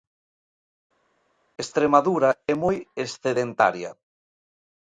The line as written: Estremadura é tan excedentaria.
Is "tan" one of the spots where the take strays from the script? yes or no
yes